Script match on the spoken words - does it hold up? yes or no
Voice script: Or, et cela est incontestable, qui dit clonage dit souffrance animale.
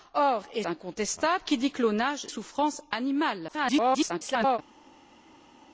no